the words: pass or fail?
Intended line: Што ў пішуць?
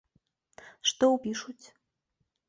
pass